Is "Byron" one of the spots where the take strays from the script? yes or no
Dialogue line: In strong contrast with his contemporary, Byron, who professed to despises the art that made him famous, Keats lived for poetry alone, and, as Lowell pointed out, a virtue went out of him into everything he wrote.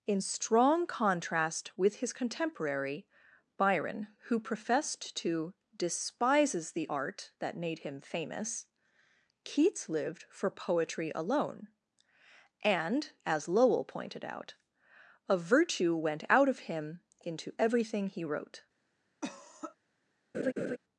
no